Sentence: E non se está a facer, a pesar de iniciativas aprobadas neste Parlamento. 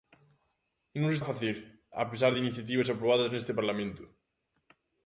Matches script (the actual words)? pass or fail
fail